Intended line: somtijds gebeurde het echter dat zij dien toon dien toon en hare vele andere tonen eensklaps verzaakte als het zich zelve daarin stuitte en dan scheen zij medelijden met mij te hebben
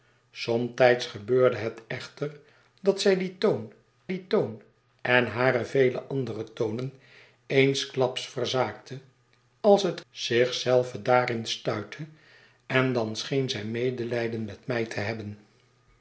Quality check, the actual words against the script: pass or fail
pass